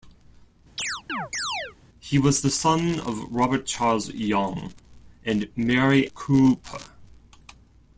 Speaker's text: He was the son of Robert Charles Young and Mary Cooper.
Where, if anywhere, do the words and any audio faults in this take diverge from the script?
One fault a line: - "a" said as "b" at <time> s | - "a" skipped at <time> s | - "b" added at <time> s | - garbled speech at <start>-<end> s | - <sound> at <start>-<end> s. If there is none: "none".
- chirp at 0.8-1.8 s